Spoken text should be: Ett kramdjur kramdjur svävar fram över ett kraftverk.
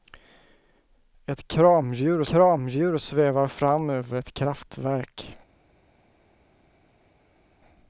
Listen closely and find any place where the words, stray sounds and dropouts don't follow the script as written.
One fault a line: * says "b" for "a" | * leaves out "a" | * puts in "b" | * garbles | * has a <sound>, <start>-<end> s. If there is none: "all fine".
all fine